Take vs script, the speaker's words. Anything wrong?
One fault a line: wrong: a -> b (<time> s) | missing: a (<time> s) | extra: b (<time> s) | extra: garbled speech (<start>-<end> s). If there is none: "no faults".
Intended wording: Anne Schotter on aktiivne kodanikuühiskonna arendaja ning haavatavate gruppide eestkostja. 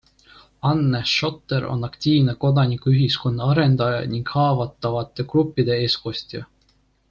no faults